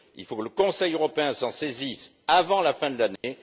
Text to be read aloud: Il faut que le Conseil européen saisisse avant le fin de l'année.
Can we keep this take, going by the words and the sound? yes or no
no